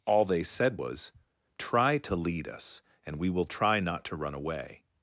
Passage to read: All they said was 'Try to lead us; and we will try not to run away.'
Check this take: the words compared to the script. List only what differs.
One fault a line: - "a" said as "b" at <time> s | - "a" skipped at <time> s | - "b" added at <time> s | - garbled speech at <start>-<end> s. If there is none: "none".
none